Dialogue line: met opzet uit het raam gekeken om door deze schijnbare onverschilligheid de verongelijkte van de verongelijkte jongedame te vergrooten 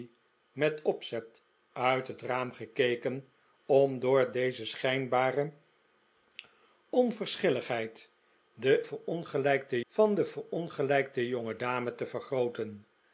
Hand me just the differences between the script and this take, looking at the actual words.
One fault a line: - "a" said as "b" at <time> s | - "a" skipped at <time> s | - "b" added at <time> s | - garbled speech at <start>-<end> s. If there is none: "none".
none